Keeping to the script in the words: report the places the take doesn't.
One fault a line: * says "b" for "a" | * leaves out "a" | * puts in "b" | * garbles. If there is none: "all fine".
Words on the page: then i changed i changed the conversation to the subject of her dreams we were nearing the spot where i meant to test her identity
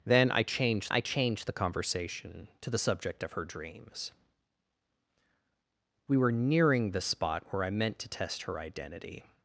all fine